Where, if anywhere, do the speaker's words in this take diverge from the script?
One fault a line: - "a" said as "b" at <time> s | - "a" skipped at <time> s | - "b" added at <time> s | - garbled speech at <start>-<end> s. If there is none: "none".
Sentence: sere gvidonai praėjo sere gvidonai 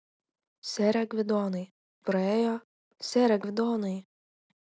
none